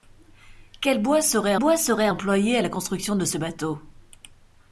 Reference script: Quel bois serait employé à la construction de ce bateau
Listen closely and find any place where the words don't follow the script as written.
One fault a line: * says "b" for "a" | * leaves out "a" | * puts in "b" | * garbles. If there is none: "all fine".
* puts in "bois serait"